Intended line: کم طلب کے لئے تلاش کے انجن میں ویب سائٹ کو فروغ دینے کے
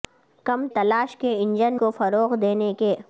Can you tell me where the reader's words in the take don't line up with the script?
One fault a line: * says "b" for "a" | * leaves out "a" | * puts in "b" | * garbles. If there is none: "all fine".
* leaves out "طلب کے لئے"
* leaves out "میں ویب سائٹ"